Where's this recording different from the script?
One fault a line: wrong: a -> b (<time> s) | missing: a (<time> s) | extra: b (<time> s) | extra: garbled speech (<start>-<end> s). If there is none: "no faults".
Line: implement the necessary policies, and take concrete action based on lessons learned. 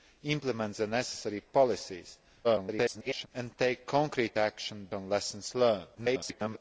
extra: garbled speech (2.4-3.3 s)
missing: based (4.9 s)
extra: garbled speech (5.9-6.6 s)